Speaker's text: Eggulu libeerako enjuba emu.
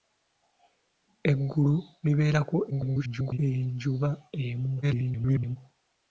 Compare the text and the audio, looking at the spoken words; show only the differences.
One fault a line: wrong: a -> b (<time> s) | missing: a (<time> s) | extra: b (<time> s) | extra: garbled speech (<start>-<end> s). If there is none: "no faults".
extra: garbled speech (2.7-3.4 s)
extra: garbled speech (4.8-5.6 s)